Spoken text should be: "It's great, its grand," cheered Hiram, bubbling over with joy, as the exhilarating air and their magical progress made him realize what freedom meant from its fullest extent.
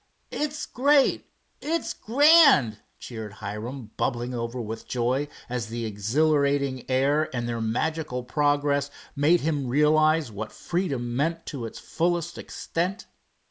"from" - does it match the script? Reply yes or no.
no